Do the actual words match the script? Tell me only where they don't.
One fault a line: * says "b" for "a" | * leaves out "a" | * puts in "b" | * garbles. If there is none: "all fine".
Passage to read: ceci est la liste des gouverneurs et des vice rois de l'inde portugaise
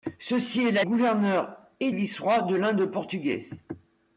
* leaves out "liste des"
* leaves out "des"